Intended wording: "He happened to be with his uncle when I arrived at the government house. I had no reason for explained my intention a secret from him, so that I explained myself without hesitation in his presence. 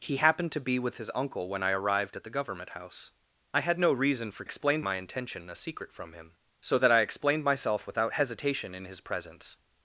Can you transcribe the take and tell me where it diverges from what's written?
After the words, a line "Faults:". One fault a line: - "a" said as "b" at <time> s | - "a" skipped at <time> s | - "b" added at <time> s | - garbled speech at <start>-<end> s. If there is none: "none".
"He happened to be with his uncle when I arrived at the government house. I had no reason for explained my intention a secret from him, so that I explained myself without hesitation in his presence.
Faults:
none